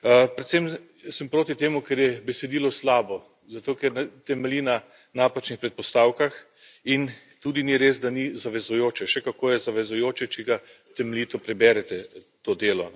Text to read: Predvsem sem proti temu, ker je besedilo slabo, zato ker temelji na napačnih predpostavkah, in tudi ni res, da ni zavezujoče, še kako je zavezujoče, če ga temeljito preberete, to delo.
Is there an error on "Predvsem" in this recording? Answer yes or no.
no